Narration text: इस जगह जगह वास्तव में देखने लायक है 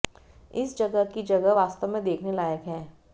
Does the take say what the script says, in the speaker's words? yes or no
no